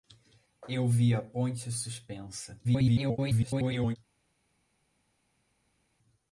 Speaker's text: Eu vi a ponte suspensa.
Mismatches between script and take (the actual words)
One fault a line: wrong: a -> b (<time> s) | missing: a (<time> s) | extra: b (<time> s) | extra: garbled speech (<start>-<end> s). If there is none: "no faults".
extra: garbled speech (2.6-4.0 s)